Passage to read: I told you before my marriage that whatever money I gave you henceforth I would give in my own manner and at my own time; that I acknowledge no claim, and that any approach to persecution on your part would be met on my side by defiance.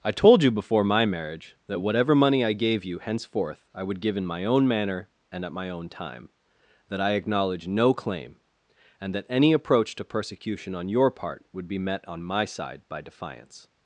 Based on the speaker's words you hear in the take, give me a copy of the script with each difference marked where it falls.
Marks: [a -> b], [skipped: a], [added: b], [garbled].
I told you before my marriage that whatever money I gave you henceforth I would give in my own manner and at my own time; that I acknowledge no claim, and that any approach to persecution on your part would be met on my side by defiance.